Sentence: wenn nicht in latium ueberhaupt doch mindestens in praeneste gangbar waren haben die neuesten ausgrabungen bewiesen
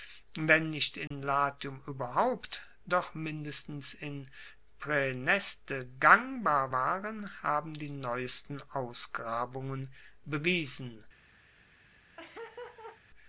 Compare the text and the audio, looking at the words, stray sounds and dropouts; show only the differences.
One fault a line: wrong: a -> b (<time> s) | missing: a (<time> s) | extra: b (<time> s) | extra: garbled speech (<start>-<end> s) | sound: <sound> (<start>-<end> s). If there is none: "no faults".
sound: dropout (1.1-1.1 s)
sound: laugh (12.2-13.0 s)